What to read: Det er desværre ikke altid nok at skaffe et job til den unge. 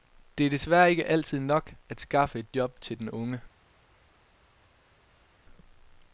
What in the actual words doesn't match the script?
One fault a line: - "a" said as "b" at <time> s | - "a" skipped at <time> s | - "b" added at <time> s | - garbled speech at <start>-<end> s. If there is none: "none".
none